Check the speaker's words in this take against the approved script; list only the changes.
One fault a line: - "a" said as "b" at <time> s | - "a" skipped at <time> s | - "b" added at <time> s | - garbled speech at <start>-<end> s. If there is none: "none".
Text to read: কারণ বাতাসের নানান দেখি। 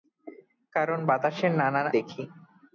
none